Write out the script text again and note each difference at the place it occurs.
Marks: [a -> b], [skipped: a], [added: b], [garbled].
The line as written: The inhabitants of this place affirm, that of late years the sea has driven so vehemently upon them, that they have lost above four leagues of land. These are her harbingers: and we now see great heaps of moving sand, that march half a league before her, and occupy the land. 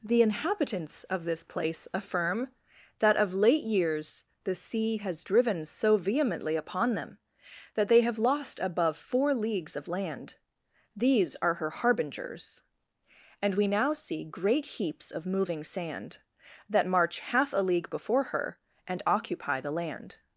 The inhabitants of this place affirm, that of late years the sea has driven so vehemently upon them, that they have lost above four leagues of land. These are her harbingers: and we now see great heaps of moving sand, that march half a league before her, and occupy the land.